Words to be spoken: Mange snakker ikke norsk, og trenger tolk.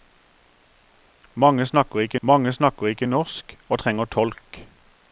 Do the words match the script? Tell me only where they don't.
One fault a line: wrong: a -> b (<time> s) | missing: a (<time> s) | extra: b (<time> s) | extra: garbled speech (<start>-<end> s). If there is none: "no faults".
extra: mange snakker ikke (2.2 s)